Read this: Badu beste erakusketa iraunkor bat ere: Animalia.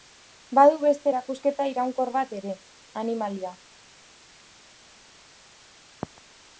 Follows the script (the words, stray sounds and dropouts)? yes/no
yes